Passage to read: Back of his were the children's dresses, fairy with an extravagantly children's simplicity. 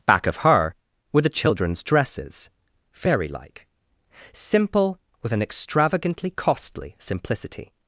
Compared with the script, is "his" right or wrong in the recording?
wrong